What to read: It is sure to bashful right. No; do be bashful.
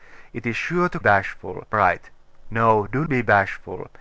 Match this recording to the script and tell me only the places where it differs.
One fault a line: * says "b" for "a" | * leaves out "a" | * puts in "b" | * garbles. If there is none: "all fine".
all fine